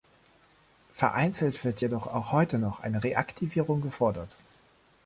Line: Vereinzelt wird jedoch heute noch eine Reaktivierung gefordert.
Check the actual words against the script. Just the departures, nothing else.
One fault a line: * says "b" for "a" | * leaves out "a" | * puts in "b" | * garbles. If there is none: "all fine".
* puts in "auch"